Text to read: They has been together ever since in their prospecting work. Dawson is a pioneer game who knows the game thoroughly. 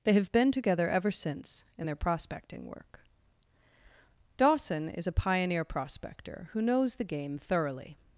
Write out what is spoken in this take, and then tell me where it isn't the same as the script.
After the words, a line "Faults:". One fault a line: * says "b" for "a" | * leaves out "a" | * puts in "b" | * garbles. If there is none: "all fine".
They have been together ever since in their prospecting work. Dawson is a pioneer prospector who knows the game thoroughly.
Faults:
* says "have" for "has"
* says "prospector" for "game"